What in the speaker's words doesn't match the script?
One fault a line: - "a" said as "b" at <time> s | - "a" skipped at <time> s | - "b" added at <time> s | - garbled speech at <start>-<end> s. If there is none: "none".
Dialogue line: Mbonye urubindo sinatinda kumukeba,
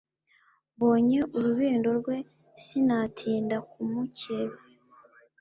- "rwe" added at 2.0 s